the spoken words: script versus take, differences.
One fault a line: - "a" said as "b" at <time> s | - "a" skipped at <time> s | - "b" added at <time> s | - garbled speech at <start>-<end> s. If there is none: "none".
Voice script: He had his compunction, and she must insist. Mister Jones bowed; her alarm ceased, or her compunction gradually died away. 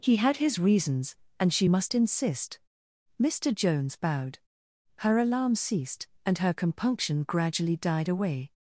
- "compunction" said as "reasons" at 0.6 s
- "or" said as "and" at 6.2 s